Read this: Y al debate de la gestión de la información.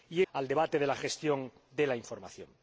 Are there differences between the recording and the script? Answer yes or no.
no